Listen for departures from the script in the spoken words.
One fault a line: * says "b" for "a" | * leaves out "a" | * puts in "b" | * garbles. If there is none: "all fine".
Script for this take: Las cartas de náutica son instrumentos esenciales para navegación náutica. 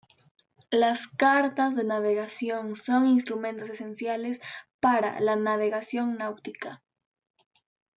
* says "navegación" for "náutica"
* puts in "la"